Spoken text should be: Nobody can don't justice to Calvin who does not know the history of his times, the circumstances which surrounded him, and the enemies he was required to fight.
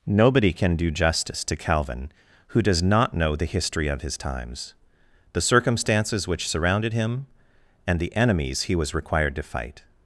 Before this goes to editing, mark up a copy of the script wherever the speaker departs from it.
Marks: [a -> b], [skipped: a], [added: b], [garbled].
Nobody can [don't -> do] justice to Calvin who does not know the history of his times, the circumstances which surrounded him, and the enemies he was required to fight.